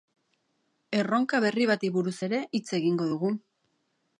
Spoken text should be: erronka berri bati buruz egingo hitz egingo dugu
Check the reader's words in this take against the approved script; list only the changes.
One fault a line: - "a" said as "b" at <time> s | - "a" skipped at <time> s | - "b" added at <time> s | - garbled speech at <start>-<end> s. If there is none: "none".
- "egingo" said as "ere" at 2.3 s